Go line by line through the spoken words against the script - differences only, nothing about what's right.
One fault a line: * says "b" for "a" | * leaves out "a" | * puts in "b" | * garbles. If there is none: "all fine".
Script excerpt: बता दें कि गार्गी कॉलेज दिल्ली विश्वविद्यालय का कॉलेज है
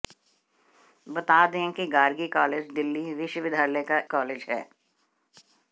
all fine